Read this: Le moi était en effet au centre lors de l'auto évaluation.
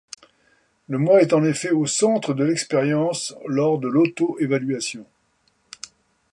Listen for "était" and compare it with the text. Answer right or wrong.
wrong